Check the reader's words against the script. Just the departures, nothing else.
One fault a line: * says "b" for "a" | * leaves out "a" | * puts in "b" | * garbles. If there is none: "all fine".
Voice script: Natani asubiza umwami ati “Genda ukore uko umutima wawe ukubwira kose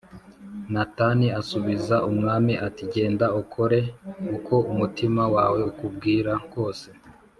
all fine